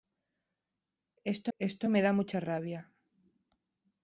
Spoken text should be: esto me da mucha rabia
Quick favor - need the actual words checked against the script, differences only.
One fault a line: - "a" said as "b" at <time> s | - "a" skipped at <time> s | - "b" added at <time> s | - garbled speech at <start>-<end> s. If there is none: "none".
- "esto" added at 1.6 s